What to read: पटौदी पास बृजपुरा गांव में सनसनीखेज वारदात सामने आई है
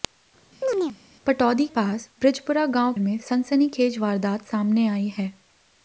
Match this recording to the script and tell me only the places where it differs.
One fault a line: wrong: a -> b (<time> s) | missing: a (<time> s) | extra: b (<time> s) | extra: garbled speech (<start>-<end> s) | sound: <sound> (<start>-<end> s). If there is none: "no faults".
sound: chirp (0.6-1.0 s)